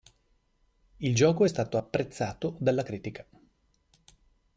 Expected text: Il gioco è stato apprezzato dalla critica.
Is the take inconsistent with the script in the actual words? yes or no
no